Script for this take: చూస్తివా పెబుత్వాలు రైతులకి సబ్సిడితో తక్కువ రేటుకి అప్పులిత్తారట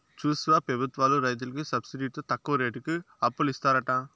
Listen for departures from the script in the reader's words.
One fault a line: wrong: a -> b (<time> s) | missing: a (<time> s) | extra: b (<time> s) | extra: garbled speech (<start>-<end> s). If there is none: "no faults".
no faults